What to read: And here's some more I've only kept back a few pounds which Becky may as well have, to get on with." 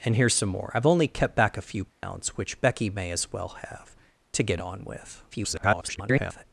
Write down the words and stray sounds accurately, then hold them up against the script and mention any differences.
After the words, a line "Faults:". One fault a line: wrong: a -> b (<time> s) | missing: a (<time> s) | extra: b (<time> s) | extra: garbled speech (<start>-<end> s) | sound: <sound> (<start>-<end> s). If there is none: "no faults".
And here's some more I've only kept back a few pounds which Becky may as well have, to get on with." [garbled]
Faults:
sound: dropout (1.9-2.0 s)
extra: garbled speech (5.3-6.4 s)